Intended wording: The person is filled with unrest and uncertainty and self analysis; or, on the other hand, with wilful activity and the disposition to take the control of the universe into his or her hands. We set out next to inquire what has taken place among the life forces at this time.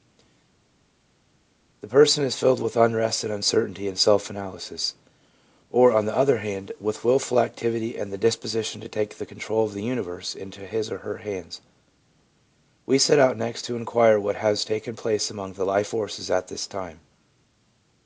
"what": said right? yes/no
yes